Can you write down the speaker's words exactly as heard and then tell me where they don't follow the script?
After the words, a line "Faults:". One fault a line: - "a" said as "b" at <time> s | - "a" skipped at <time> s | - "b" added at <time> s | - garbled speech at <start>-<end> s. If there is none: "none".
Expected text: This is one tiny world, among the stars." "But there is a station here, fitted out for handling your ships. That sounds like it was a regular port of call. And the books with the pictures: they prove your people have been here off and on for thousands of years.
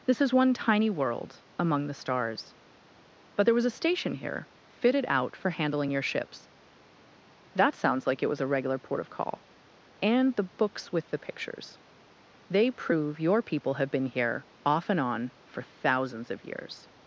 This is one tiny world, among the stars." "But there was a station here, fitted out for handling your ships. That sounds like it was a regular port of call. And the books with the pictures: they prove your people have been here off and on for thousands of years.
Faults:
- "is" said as "was" at 3.5 s